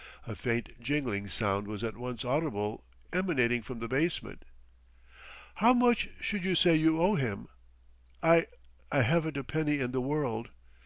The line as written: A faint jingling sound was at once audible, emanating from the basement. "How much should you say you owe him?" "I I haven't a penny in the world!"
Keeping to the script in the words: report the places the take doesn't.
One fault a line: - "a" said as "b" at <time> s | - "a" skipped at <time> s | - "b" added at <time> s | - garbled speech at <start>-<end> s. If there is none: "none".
none